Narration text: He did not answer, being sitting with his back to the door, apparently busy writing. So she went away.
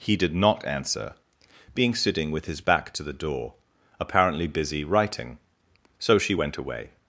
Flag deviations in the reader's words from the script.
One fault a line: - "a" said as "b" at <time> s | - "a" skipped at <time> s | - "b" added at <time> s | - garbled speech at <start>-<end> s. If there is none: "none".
none